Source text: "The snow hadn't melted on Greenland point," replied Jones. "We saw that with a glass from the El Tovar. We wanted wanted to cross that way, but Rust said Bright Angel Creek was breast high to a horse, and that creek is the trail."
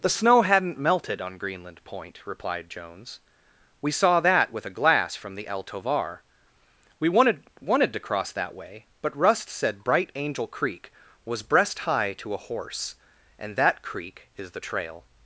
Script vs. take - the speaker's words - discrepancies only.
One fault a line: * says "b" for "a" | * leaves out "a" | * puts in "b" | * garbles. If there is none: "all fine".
all fine